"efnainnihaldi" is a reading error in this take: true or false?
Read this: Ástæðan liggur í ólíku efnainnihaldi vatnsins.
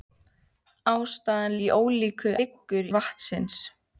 true